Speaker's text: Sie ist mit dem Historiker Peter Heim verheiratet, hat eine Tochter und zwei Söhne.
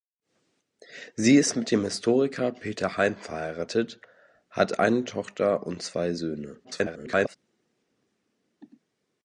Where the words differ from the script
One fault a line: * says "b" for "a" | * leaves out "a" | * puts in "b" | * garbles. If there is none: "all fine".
* garbles